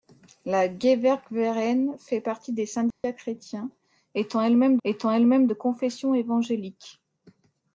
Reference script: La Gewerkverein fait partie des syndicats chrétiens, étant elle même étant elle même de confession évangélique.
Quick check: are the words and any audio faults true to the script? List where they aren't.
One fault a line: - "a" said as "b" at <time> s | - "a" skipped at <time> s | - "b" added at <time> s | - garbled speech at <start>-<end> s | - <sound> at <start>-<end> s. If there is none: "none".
- dropout at 2.9-3.0 s